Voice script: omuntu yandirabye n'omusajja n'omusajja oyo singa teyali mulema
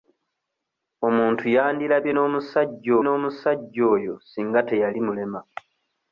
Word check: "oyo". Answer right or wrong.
right